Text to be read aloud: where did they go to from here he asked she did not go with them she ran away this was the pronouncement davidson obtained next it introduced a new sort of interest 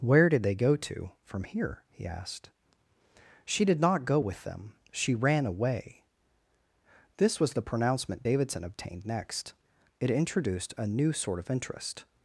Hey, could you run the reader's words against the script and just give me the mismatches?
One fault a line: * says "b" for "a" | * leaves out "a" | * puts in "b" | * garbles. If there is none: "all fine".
all fine